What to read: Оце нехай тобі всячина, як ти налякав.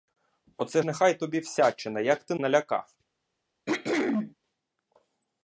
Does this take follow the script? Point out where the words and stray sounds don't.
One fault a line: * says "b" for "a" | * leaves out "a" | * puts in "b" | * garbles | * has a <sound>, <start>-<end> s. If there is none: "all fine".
* has a throat clearing, 3.7-4.3 s